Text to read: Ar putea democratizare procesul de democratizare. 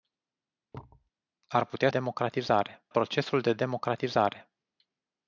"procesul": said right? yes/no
yes